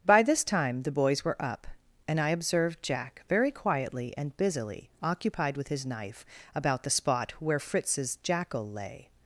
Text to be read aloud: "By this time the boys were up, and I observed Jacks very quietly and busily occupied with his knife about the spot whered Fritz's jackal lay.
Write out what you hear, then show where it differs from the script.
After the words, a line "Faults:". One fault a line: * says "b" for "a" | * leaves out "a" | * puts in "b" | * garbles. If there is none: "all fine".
"By this time the boys were up, and I observed Jack very quietly and busily occupied with his knife about the spot where Fritz's jackal lay.
Faults:
* says "Jack" for "Jacks"
* says "where" for "whered"